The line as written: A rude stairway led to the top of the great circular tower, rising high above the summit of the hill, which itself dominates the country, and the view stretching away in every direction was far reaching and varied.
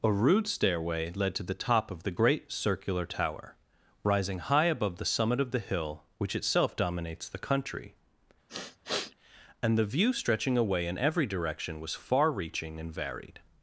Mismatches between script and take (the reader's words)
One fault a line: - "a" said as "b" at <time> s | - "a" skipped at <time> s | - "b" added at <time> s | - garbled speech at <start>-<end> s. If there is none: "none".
none